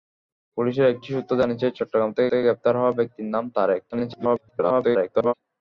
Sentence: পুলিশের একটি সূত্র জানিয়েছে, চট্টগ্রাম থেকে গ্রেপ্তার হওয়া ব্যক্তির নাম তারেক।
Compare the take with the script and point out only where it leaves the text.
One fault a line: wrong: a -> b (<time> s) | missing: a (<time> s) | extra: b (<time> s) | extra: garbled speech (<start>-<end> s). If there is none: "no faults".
extra: থেকে (2.3 s)
extra: garbled speech (3.9-5.3 s)